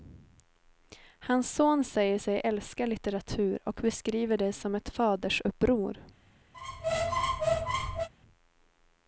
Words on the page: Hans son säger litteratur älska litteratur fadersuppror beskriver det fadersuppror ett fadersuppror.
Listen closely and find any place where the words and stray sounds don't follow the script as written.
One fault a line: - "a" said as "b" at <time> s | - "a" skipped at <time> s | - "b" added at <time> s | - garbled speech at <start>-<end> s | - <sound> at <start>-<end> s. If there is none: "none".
- "litteratur" said as "sig" at 2.2 s
- "fadersuppror" said as "och" at 3.6 s
- "fadersuppror" said as "som" at 4.5 s
- squeak at 6.5-8.1 s